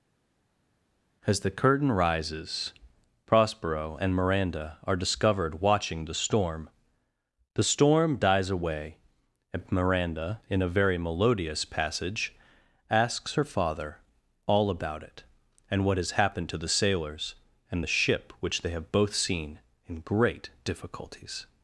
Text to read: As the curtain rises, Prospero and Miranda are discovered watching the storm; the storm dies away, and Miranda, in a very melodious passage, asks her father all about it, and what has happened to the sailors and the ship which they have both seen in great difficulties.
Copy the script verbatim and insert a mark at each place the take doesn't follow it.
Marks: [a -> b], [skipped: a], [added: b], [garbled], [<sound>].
As the curtain rises, Prospero and Miranda are discovered watching the storm; the storm dies away, and Miranda, in a very melodious passage, asks her father all about it, and what has happened to the sailors and the ship which they have both seen in great difficulties.